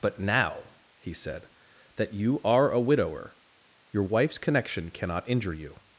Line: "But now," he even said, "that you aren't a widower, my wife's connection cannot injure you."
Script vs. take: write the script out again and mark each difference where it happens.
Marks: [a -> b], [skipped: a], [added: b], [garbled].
"But now," he [skipped: even] said, "that you [aren't -> are] a widower, [my -> your] wife's connection cannot injure you."